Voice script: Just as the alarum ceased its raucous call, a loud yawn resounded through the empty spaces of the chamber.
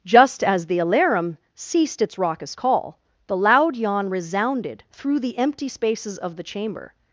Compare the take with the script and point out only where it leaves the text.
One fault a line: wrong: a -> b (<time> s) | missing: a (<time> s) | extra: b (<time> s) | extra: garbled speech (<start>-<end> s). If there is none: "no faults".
wrong: a -> the (3.3 s)